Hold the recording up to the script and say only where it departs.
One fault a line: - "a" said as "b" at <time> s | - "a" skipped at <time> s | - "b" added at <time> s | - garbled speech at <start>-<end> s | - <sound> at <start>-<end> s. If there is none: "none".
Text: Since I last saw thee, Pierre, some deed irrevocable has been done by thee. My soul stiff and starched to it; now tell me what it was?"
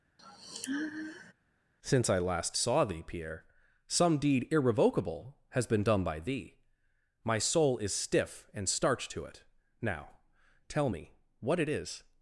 - sigh at 0.2-1.3 s
- "is" added at 7.8 s
- "was" said as "is" at 11.7 s